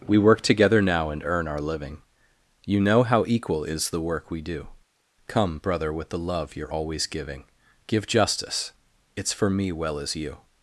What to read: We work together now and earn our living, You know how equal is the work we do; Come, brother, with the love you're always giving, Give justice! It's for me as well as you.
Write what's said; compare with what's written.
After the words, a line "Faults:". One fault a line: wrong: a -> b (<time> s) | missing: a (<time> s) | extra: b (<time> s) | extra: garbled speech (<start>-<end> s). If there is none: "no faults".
We work together now and earn our living, You know how equal is the work we do; Come, brother, with the love you're always giving, Give justice! It's for me well as you.
Faults:
missing: as (9.7 s)